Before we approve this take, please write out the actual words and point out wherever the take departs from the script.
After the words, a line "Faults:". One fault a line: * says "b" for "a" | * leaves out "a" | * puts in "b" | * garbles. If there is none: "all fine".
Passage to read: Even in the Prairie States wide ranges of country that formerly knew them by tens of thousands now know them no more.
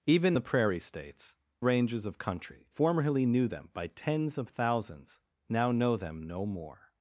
Even the Prairie States ranges of country formerly knew them by tens of thousands now know them no more.
Faults:
* leaves out "in"
* leaves out "wide"
* leaves out "that"